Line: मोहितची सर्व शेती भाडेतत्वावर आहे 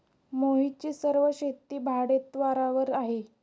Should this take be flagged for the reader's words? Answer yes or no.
no